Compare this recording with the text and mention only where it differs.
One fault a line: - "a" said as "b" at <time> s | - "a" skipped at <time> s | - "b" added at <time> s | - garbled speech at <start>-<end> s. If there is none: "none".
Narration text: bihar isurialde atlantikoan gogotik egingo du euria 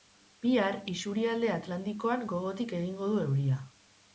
none